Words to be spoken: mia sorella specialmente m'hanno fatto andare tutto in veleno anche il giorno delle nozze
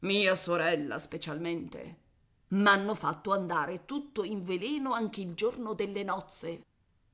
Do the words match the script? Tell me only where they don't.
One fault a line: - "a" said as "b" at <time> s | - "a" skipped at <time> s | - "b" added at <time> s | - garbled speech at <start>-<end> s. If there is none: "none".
none